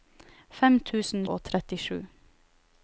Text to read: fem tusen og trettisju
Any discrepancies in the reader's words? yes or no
no